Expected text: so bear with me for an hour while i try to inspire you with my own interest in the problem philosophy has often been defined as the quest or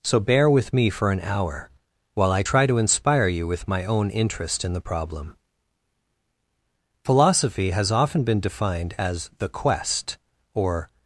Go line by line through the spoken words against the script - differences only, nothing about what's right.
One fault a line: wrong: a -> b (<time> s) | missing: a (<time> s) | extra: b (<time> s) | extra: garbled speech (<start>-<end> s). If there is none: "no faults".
no faults